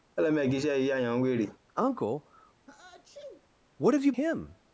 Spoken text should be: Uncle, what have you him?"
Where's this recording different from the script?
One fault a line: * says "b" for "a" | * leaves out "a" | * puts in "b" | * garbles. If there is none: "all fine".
all fine